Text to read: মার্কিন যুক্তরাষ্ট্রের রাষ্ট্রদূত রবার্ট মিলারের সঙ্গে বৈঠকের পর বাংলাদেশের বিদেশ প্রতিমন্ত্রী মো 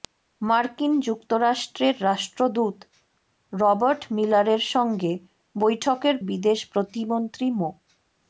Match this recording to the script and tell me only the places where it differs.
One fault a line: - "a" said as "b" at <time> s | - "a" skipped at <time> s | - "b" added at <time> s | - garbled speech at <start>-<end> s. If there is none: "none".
- "পর বাংলাদেশের" skipped at 6.2 s